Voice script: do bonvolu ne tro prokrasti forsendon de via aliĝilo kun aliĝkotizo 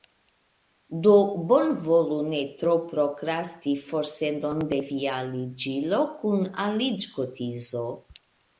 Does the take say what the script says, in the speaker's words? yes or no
yes